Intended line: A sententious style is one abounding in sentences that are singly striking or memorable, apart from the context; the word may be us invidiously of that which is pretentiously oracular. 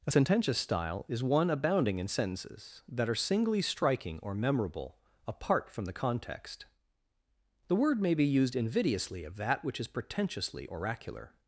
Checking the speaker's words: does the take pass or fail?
fail